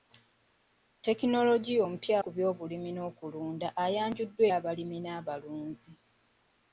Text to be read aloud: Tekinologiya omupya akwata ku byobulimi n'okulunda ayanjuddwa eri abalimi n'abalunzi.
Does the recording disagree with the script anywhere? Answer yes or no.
yes